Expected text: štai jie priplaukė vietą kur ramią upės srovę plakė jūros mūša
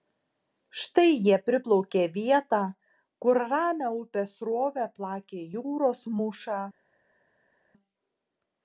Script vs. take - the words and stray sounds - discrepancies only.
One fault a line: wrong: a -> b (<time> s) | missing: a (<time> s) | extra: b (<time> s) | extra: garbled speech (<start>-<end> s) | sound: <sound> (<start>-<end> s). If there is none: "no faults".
no faults